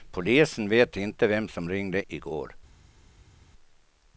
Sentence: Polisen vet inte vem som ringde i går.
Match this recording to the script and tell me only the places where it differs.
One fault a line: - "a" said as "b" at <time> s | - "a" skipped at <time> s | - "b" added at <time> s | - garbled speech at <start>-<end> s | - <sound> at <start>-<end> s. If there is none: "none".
none